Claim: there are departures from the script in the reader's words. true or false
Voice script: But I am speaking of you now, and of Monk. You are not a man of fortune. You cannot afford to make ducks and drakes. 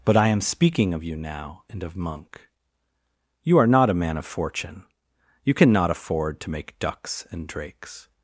false